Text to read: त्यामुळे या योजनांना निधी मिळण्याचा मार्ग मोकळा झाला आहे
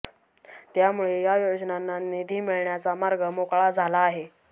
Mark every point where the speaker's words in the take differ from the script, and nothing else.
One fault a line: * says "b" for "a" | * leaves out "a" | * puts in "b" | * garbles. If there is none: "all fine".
all fine